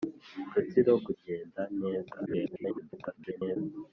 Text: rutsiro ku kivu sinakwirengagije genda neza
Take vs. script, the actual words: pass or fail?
fail